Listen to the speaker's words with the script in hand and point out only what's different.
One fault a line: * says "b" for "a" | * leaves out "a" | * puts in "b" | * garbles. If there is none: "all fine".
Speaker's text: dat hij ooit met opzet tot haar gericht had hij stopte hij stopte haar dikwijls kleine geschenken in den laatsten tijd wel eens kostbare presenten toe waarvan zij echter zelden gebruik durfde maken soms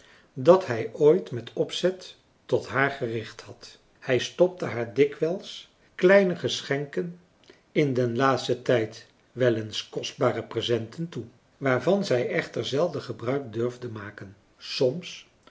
* leaves out "hij stopte"